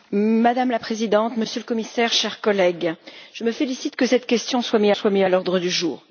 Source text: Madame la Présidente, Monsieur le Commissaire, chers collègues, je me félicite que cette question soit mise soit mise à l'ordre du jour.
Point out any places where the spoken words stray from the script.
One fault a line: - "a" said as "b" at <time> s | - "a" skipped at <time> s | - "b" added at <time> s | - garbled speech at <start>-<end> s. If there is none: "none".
none